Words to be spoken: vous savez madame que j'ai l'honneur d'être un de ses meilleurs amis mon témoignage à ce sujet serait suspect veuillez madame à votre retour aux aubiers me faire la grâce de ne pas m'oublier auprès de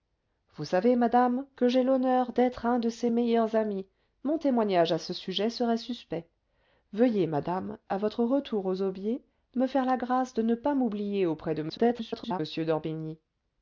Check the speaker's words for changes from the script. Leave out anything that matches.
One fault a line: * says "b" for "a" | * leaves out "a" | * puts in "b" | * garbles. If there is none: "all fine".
* garbles